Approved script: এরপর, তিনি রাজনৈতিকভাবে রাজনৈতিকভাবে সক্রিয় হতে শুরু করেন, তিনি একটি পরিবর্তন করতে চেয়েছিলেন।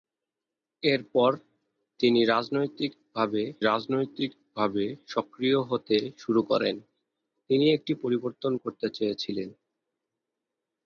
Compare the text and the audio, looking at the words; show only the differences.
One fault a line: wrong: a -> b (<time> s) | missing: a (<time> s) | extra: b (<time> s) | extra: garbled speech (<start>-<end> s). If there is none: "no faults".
no faults